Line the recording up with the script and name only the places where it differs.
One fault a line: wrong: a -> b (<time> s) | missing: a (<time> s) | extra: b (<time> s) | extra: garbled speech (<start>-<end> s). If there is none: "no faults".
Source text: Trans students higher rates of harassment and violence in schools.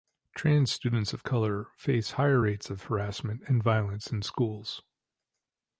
extra: of color face (1.1 s)